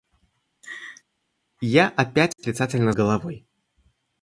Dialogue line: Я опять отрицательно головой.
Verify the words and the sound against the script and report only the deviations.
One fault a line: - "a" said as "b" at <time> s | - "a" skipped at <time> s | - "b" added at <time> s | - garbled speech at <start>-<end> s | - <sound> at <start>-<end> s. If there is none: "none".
- laugh at 0.6-1.0 s